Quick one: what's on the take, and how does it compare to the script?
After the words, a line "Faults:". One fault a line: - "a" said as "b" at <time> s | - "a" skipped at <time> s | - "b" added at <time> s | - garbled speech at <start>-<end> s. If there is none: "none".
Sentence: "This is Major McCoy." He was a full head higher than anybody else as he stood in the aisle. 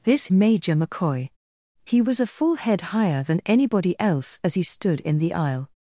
"This Major McCoy." He was a full head higher than anybody else as he stood in the aisle.
Faults:
- "is" skipped at 0.3 s